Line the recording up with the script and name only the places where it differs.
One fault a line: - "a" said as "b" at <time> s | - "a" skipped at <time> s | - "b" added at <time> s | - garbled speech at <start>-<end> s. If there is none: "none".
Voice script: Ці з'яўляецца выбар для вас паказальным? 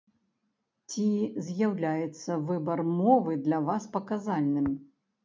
- "мовы" added at 3.0 s